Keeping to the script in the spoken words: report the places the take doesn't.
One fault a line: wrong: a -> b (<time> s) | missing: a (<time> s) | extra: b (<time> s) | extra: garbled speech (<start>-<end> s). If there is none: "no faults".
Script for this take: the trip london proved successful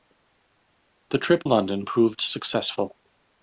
no faults